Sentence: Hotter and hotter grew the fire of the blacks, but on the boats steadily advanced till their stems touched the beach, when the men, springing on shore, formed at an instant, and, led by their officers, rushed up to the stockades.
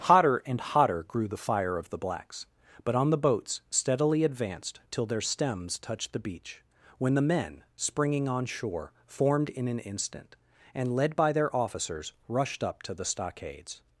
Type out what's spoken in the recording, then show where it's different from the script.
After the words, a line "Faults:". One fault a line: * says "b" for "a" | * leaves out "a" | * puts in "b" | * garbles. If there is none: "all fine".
Hotter and hotter grew the fire of the blacks, but on the boats steadily advanced till their stems touched the beach, when the men, springing on shore, formed in an instant, and, led by their officers, rushed up to the stockades.
Faults:
* says "in" for "at"